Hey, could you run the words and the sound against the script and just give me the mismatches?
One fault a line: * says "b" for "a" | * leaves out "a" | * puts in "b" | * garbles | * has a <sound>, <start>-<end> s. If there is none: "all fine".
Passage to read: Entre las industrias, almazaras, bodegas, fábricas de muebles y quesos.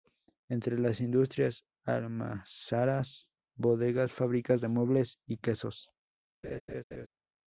* has a laugh, 6.4-7.1 s